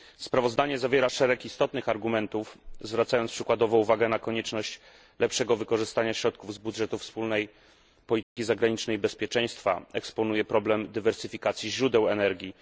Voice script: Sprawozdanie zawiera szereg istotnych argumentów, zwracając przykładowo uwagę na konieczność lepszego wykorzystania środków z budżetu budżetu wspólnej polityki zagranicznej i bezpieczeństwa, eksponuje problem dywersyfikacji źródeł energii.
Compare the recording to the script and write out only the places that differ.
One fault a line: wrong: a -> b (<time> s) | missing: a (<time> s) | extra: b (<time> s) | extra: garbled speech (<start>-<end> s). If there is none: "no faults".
missing: budżetu (7.0 s)